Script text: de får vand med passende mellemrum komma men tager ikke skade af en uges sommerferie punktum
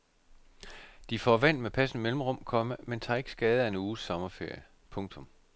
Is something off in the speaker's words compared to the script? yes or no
no